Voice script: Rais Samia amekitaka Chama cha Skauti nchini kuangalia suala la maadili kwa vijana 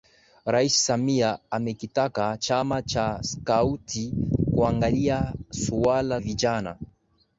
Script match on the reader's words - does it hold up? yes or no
no